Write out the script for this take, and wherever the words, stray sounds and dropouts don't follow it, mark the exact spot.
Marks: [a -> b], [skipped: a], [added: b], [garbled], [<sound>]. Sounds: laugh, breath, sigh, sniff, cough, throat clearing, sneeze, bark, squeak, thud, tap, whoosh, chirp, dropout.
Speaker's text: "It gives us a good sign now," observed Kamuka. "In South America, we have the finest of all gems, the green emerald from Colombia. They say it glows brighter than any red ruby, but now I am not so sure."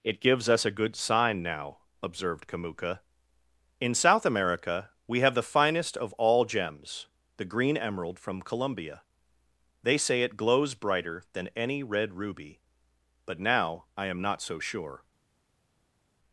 "It gives us a good sign now," observed Kamuka. "In South America, we have the finest of all gems, the green emerald from Colombia. They say it glows brighter than any red ruby, but now I am not so sure."